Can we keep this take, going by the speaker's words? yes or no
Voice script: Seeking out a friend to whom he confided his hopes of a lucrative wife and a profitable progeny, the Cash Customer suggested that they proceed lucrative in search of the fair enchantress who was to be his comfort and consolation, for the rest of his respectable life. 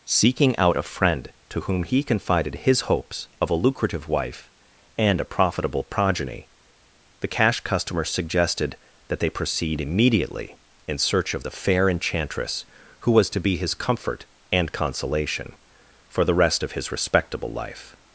no